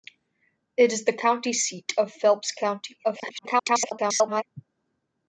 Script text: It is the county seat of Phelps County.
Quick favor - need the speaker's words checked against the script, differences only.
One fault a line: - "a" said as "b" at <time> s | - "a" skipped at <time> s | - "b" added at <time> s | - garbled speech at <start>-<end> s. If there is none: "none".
- garbled speech at 3.0-4.4 s